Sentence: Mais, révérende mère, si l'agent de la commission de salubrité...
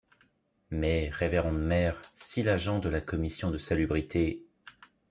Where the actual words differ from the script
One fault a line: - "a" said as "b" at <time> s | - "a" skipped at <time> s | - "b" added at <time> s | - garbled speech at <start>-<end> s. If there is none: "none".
none